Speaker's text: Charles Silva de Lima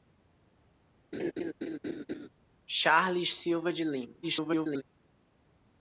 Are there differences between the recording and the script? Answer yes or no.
yes